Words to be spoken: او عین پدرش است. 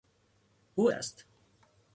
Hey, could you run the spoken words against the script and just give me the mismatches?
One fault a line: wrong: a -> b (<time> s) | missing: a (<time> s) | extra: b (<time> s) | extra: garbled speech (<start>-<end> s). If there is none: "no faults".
missing: عین پدرش (0.9 s)